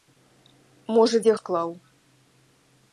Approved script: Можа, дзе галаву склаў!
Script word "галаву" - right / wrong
wrong